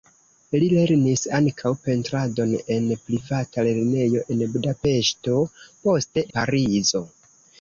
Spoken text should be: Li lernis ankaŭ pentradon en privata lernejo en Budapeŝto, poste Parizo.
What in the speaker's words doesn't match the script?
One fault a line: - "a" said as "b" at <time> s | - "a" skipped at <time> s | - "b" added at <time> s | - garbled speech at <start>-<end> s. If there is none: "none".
none